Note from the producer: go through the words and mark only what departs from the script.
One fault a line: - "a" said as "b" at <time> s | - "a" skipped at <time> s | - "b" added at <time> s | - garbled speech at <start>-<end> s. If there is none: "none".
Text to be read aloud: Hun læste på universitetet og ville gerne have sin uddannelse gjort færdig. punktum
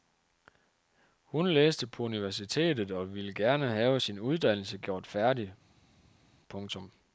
none